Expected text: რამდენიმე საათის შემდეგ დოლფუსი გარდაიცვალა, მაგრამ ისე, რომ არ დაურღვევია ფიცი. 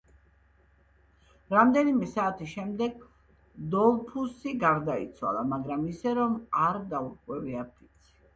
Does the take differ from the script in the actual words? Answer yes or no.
no